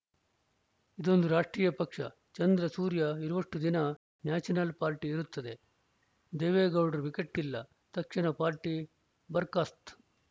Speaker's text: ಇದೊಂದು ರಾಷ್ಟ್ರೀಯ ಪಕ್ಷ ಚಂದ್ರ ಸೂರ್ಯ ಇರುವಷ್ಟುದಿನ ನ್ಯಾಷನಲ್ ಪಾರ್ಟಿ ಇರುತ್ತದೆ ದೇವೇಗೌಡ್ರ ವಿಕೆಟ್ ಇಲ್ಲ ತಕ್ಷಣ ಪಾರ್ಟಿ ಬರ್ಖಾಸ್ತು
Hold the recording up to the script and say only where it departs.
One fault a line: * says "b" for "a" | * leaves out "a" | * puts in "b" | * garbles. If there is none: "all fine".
all fine